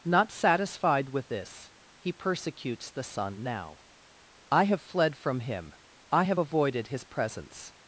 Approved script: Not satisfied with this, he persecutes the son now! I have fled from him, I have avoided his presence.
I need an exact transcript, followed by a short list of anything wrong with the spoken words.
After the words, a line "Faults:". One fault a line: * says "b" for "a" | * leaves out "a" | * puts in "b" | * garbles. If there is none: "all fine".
Not satisfied with this, he persecutes the son now! I have fled from him, I have avoided his presence.
Faults:
all fine